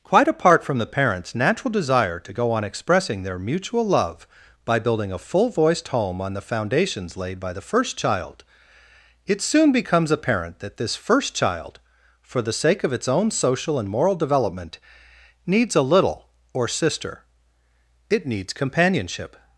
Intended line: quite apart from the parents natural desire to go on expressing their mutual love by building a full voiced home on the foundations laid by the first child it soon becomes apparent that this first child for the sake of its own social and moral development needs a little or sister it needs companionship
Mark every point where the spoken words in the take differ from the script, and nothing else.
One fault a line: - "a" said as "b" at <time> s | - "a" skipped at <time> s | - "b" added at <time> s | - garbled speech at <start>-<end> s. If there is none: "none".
none